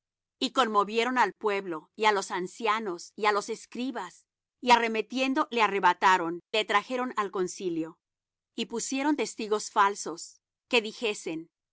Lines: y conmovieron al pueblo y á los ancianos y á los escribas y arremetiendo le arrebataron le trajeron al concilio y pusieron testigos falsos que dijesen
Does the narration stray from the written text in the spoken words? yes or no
no